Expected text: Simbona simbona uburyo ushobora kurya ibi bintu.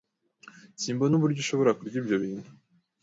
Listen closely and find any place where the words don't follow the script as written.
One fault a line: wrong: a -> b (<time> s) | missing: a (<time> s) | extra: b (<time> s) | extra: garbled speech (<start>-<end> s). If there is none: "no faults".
missing: simbona (1.1 s)
wrong: ibi -> ibyo (2.0 s)